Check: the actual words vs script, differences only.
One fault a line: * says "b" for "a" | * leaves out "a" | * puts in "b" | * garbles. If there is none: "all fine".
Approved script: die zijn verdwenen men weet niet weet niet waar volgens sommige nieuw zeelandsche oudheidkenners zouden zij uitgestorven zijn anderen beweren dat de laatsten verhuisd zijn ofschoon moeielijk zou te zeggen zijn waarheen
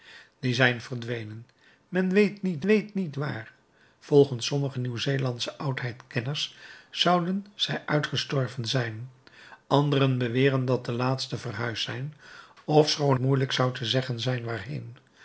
all fine